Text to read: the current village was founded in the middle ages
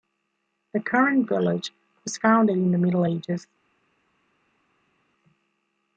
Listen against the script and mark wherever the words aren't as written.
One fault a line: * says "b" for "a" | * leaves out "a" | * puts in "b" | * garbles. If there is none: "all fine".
all fine